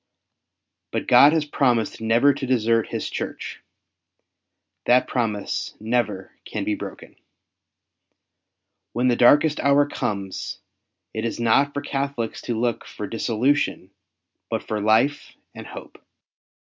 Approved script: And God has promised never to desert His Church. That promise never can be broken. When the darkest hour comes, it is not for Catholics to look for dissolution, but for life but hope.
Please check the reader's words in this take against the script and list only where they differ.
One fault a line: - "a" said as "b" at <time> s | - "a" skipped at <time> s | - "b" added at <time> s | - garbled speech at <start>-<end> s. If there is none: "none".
- "And" said as "But" at 0.9 s
- "but" said as "and" at 15.5 s